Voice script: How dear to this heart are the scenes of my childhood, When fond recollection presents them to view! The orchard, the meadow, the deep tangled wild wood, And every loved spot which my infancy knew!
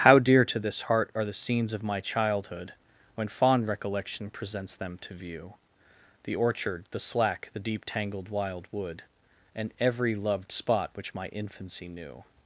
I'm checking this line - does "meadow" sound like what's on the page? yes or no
no